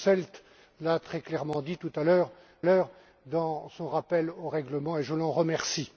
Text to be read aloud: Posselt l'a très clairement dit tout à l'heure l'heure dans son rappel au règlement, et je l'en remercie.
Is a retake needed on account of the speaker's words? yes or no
no